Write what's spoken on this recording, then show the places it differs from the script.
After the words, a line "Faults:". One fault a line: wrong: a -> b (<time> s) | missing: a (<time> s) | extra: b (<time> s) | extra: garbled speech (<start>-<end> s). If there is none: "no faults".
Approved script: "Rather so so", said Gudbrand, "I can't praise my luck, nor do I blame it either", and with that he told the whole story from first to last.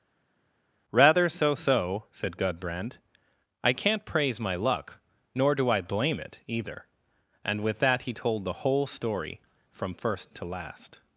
"Rather so so", said Gudbrand, "I can't praise my luck, nor do I blame it either", and with that he told the whole story from first to last.
Faults:
no faults